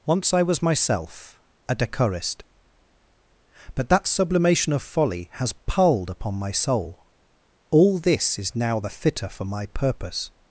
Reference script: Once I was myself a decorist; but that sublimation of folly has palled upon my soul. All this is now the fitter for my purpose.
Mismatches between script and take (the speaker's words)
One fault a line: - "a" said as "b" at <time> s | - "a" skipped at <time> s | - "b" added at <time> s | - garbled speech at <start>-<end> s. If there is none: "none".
none